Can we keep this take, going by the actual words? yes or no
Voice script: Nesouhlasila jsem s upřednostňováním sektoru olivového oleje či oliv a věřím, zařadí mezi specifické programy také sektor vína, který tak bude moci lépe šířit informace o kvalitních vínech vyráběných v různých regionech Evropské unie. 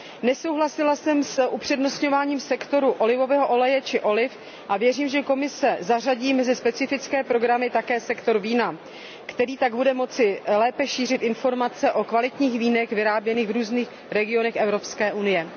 no